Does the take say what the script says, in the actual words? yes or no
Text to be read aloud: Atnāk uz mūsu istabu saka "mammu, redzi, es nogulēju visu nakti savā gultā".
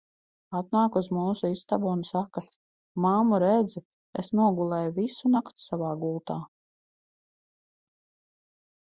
no